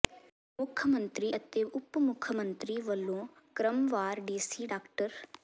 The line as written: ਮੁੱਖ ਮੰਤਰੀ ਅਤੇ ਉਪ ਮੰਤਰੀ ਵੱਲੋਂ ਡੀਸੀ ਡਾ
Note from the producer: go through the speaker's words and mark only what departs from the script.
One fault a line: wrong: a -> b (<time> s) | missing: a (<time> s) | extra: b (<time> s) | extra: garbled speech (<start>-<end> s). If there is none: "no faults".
extra: ਮੁੱਖ (2.0 s)
extra: ਕ੍ਰਮਵਾਰ (3.5 s)